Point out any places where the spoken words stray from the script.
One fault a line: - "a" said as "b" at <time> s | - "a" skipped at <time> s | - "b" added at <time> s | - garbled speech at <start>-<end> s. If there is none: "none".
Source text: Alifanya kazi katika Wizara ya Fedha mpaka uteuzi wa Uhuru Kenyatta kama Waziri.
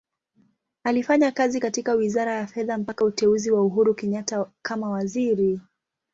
none